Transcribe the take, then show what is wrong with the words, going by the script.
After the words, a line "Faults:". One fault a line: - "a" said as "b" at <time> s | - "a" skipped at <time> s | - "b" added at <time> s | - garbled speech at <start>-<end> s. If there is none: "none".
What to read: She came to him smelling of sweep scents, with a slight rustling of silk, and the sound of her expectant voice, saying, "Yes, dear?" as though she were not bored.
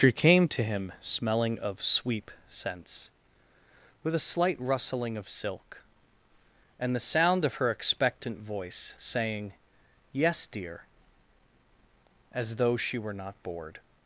She came to him smelling of sweep scents, with a slight rustling of silk, and the sound of her expectant voice, saying, "Yes, dear?" as though she were not bored.
Faults:
none